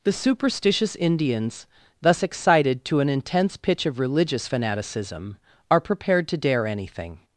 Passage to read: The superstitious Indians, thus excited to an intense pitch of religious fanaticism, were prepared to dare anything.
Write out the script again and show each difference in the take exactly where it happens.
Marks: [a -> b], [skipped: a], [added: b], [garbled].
The superstitious Indians, thus excited to an intense pitch of religious fanaticism, [were -> are] prepared to dare anything.